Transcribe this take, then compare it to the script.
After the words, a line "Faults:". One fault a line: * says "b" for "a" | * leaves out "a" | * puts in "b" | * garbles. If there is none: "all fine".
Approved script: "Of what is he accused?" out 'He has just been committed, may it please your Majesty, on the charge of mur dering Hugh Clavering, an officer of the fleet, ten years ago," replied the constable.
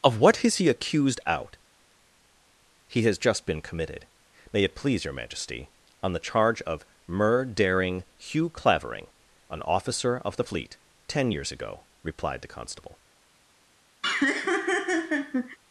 "Of what is he accused?" out 'He has just been committed, may it please your Majesty, on the charge of mur dering Hugh Clavering, an officer of the fleet, ten years ago," replied the constable.
Faults:
all fine